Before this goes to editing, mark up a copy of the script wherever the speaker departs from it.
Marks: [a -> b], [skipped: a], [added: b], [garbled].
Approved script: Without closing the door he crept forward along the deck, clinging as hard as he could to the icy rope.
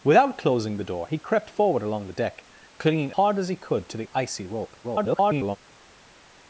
Without closing the door he crept forward along the deck, clinging [skipped: as] hard as he could to the icy rope. [garbled]